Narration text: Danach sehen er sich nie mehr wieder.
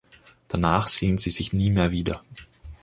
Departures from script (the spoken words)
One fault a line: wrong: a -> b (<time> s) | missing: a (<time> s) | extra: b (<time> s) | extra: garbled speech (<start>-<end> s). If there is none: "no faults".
wrong: er -> sie (1.2 s)